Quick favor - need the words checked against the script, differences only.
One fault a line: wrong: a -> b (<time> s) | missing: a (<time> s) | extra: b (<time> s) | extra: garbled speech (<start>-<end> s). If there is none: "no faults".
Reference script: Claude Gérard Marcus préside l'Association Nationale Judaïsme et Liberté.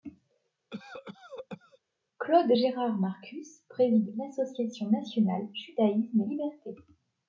no faults